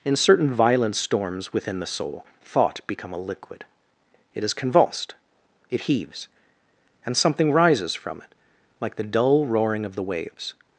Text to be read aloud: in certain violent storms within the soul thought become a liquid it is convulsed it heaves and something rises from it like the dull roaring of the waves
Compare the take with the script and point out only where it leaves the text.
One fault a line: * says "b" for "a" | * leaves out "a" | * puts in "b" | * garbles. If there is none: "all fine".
all fine